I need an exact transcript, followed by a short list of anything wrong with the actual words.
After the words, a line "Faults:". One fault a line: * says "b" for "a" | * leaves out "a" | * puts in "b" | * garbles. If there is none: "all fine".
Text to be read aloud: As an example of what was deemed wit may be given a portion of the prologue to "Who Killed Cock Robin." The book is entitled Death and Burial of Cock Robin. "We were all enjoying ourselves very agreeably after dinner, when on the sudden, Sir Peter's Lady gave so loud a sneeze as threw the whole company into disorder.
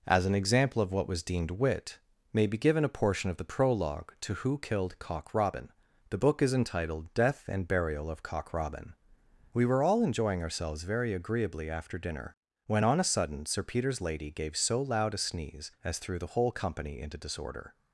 As an example of what was deemed wit may be given a portion of the prologue to "Who Killed Cock Robin." The book is entitled Death and Burial of Cock Robin. "We were all enjoying ourselves very agreeably after dinner, when on a sudden, Sir Peter's Lady gave so loud a sneeze as threw the whole company into disorder.
Faults:
* says "a" for "the"